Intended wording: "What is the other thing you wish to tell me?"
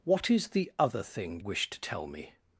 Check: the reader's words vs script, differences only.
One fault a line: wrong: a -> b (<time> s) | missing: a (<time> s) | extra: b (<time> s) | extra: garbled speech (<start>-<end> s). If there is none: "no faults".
missing: you (1.4 s)